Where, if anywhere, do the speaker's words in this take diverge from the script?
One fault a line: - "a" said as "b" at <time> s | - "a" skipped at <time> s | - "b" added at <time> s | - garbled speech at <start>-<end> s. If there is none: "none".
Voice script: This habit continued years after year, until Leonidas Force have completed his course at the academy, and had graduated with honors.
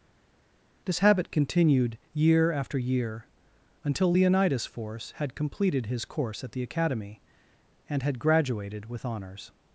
- "years" said as "year" at 2.1 s
- "have" said as "had" at 5.2 s